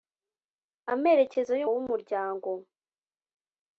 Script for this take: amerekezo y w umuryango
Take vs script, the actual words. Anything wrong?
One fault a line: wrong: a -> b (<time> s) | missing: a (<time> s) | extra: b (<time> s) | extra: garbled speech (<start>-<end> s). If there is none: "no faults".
no faults